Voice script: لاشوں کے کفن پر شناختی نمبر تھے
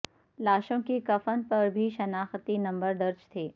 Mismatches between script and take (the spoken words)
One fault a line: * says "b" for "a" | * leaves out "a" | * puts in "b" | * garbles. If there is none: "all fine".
* puts in "بھی"
* puts in "درج"